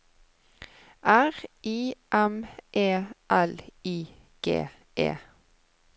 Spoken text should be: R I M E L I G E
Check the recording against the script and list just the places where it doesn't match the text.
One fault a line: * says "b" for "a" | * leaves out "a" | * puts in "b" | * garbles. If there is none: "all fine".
all fine